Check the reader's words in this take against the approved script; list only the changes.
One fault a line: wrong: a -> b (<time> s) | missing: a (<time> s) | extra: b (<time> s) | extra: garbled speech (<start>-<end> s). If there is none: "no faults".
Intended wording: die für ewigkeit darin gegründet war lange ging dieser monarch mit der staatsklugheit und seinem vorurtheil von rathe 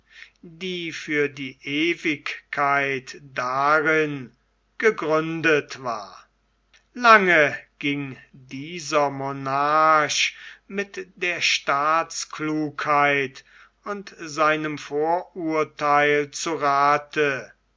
extra: die (1.3 s)
wrong: von -> zu (16.3 s)